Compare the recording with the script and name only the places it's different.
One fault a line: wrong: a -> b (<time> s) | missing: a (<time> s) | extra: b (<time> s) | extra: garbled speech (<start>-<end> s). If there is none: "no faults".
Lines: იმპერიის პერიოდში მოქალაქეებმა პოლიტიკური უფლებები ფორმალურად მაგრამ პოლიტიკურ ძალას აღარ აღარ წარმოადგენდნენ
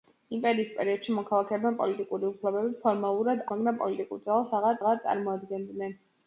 no faults